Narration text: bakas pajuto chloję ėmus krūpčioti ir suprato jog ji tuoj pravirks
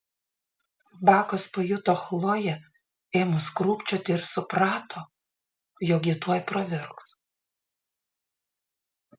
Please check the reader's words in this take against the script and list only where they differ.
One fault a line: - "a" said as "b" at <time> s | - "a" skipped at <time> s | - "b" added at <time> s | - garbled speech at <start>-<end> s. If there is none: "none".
none